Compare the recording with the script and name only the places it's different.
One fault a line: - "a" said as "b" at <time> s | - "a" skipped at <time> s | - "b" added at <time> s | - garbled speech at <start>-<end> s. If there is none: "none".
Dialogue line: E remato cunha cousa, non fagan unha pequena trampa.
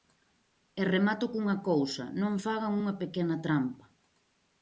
none